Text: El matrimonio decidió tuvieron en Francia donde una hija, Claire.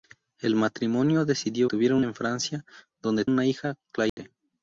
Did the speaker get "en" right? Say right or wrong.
right